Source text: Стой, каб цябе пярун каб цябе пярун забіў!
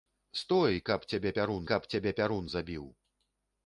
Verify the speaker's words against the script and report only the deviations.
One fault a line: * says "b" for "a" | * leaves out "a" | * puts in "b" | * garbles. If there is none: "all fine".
all fine